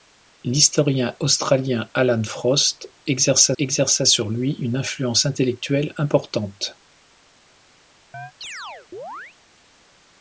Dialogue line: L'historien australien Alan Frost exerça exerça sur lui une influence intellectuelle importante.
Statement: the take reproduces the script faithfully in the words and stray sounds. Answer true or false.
false